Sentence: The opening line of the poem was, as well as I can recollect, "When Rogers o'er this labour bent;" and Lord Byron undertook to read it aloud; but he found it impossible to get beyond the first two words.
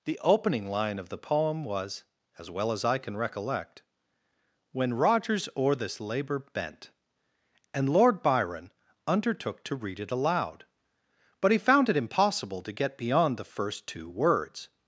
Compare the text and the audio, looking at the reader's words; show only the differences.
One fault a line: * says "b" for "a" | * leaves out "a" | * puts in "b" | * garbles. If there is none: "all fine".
all fine